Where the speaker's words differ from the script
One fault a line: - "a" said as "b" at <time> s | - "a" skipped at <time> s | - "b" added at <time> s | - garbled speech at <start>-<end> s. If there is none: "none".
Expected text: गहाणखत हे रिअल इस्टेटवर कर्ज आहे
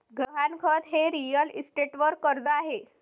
none